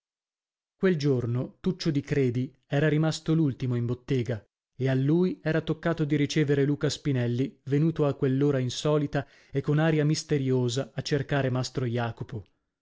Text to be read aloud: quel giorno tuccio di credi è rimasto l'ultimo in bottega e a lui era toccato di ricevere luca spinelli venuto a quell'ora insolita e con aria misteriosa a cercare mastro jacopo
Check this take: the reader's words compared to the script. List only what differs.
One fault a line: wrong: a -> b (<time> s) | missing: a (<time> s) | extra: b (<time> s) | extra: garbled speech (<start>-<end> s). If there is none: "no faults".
wrong: è -> era (2.7 s)